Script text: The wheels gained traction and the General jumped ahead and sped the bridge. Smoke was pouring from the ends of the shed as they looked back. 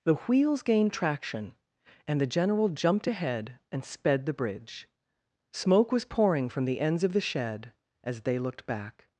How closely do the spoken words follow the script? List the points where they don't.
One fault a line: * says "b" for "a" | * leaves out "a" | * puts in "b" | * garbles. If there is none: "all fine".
all fine